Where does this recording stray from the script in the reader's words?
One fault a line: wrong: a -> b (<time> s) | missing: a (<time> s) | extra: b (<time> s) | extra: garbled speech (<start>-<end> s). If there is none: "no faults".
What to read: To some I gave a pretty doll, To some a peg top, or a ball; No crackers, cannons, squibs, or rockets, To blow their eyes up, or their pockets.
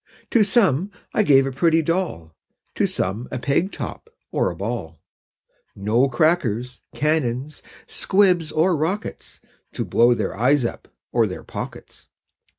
no faults